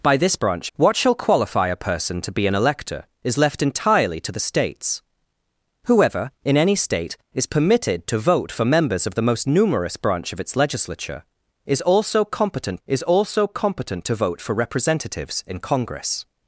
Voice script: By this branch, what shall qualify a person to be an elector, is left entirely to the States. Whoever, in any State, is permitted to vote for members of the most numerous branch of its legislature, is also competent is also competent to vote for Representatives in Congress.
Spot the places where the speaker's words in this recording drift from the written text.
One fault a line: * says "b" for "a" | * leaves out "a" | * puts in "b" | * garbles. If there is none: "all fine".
all fine